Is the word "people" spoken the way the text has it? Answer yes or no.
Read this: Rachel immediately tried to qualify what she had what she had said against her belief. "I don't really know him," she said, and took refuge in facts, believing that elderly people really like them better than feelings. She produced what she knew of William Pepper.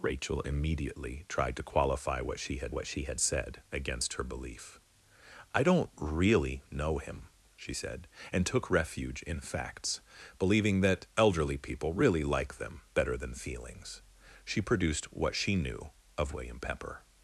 yes